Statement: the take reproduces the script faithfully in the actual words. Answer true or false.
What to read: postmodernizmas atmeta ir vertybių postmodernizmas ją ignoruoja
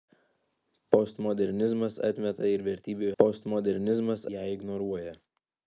true